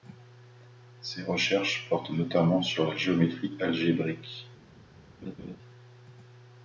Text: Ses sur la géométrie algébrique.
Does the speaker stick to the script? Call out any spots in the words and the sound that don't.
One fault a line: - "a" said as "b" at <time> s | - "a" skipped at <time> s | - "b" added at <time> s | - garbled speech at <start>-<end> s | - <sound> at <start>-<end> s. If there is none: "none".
- "recherches portent notamment" added at 1.2 s
- laugh at 5.2-5.6 s